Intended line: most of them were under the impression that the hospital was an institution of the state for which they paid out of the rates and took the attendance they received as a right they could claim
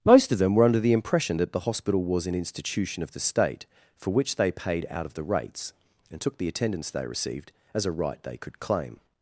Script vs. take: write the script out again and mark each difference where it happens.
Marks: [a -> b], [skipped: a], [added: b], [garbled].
most of them were under the impression that the hospital was an institution of the state for which they paid out of the rates and took the attendance they received as a right they could claim